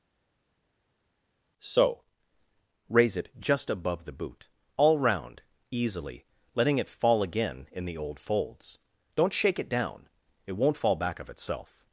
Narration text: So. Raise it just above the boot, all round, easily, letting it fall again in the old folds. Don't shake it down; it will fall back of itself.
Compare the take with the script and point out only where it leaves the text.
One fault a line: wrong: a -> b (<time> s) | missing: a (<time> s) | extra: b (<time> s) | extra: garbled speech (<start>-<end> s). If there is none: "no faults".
wrong: will -> won't (10.5 s)